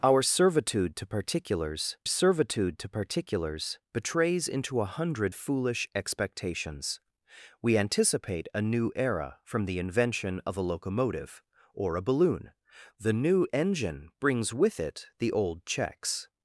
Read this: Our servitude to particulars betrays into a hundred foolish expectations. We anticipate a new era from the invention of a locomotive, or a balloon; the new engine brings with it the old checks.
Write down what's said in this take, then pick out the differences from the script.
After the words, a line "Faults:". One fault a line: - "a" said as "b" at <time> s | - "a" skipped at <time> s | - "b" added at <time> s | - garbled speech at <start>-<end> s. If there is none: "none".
Our servitude to particulars servitude to particulars betrays into a hundred foolish expectations. We anticipate a new era from the invention of a locomotive, or a balloon; the new engine brings with it the old checks.
Faults:
- "servitude to particulars" added at 2.1 s